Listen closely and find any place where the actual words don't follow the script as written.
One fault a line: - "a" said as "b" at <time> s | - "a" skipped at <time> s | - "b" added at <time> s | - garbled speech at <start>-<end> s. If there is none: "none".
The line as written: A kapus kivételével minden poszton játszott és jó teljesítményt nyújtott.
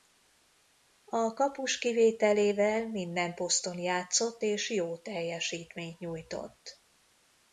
none